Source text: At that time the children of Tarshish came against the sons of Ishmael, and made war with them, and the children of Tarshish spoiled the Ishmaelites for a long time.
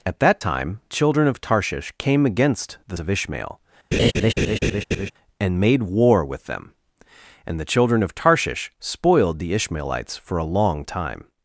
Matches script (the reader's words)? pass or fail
fail